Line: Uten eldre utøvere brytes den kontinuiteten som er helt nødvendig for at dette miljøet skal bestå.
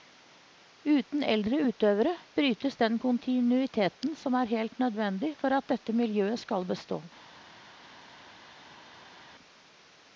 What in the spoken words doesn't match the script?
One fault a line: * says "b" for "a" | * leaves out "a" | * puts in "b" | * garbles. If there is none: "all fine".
all fine